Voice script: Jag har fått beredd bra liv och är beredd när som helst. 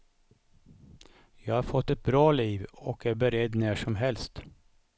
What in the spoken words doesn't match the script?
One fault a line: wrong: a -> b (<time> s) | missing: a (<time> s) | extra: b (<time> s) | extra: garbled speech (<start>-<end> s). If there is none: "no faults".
wrong: beredd -> ett (1.9 s)